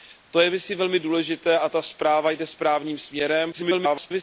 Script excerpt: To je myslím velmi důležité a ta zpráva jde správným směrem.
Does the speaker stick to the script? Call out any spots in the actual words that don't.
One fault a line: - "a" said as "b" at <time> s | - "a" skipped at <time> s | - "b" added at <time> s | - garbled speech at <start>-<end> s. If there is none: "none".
- garbled speech at 3.5-4.2 s